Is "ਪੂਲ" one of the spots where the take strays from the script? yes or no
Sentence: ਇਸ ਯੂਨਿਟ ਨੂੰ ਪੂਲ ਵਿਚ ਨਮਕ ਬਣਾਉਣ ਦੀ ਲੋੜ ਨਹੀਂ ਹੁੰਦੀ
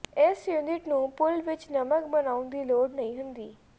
no